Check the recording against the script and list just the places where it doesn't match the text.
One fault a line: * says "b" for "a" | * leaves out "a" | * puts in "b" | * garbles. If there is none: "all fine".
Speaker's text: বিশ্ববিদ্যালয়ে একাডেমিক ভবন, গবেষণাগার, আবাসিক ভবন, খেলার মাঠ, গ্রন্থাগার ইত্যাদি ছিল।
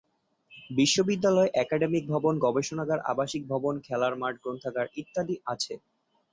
* says "আছে" for "ছিল"